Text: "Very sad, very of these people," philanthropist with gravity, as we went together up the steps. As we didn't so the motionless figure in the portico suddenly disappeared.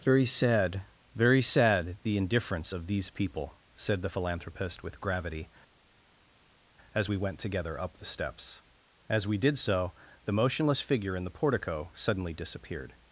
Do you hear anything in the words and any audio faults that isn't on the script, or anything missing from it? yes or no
yes